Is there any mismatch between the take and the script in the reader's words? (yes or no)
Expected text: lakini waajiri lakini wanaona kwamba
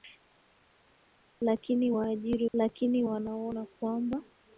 no